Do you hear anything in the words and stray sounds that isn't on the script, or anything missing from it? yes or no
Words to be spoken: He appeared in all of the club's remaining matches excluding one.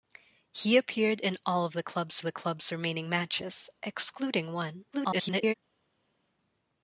yes